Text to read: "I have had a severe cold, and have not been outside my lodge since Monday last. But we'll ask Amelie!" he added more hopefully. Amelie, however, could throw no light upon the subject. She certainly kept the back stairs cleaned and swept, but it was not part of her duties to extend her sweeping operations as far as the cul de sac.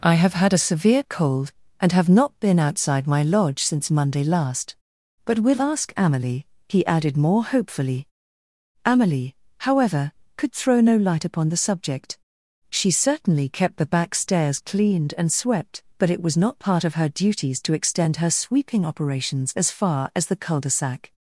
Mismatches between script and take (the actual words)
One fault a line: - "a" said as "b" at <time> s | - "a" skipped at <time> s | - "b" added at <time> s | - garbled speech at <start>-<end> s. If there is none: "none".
none